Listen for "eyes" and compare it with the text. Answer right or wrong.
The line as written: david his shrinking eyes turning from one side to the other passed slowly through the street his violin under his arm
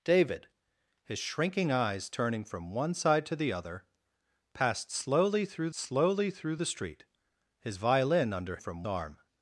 right